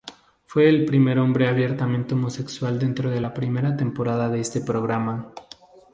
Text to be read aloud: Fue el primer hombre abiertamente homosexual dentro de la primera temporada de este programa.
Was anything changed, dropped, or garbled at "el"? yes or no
no